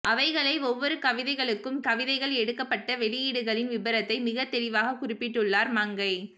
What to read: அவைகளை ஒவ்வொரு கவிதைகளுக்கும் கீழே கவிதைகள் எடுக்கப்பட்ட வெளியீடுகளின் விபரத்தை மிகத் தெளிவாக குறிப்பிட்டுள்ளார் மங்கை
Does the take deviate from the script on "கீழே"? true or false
true